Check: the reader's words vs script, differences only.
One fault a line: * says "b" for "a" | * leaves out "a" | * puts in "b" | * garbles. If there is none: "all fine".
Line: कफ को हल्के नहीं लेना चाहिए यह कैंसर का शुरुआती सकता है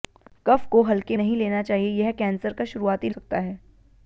all fine